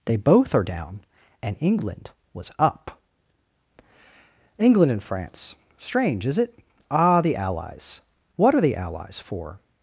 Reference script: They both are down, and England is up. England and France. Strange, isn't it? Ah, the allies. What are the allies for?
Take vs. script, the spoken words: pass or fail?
fail